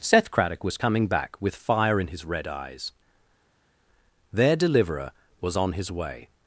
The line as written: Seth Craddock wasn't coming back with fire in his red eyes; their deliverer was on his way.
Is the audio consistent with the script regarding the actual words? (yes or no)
no